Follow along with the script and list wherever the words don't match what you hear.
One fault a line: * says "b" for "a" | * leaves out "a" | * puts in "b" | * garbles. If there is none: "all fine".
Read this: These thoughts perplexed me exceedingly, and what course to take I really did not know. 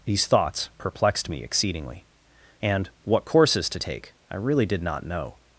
* says "courses" for "course"